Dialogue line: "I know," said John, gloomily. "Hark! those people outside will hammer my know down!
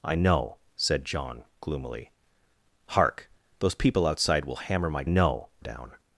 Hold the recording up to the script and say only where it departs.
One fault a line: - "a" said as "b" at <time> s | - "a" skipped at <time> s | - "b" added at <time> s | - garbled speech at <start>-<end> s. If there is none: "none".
none